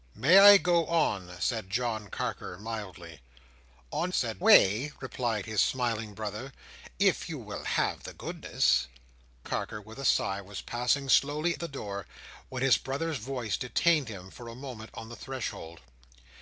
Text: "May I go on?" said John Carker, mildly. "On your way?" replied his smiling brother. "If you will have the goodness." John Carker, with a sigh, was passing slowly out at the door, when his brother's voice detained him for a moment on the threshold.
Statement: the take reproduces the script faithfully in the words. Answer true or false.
false